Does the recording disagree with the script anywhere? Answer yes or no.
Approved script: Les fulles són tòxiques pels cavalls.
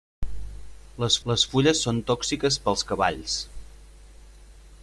yes